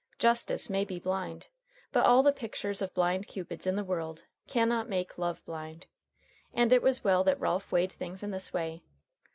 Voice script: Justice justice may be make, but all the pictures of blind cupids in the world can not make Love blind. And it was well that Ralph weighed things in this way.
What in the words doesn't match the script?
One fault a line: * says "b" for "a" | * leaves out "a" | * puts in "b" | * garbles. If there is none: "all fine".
* leaves out "justice"
* says "blind" for "make"